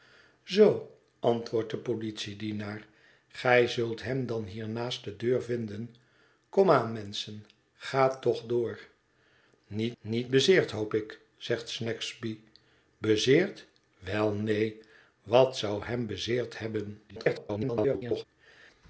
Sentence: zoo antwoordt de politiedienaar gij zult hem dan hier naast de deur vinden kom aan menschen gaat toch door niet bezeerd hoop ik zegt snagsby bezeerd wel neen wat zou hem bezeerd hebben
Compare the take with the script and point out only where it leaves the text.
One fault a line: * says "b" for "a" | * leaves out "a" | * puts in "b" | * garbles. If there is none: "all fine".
* puts in "niet"
* garbles